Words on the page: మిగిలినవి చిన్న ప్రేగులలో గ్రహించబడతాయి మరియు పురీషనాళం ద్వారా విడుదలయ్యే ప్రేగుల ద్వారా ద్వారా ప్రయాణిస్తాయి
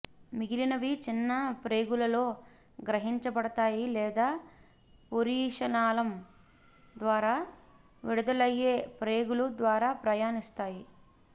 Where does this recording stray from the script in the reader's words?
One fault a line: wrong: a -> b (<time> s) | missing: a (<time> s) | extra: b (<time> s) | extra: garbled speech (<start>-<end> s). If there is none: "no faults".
wrong: మరియు -> లేదా (3.9 s)
missing: ద్వారా (9.9 s)